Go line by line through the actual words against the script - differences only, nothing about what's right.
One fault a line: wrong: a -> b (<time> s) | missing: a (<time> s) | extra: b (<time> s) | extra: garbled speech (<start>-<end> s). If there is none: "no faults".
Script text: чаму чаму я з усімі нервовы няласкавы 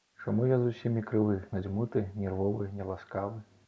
missing: чаму (0.5 s)
extra: крывы надзьмуты (1.1 s)